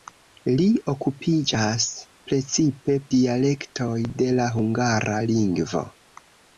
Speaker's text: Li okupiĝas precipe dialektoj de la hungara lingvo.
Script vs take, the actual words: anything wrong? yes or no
no